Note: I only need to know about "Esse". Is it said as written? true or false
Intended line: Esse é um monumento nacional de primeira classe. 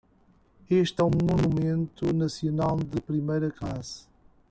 false